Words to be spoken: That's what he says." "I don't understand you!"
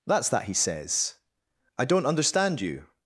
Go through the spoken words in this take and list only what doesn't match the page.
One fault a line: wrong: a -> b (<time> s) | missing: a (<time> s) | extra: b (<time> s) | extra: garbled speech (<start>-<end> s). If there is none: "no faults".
wrong: what -> that (0.3 s)